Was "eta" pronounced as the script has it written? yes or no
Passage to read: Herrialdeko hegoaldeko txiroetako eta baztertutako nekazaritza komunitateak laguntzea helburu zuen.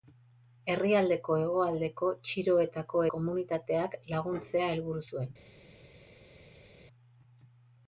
no